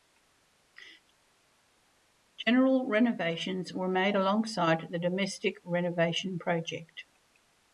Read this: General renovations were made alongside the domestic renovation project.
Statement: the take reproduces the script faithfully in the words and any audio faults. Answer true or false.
true